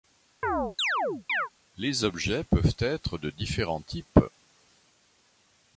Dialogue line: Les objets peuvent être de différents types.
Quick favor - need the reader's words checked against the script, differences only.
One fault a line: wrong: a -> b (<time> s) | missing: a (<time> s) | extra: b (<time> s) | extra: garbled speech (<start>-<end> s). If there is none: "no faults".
no faults